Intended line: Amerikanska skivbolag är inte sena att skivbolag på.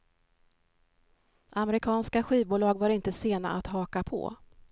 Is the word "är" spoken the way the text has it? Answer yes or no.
no